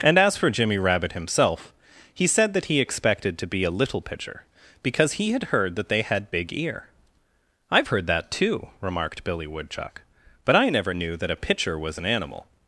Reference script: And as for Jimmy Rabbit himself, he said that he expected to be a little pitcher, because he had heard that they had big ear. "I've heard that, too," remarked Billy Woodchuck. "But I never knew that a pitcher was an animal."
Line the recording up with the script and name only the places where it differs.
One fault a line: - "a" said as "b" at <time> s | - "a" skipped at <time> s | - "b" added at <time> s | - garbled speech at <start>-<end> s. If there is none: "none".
none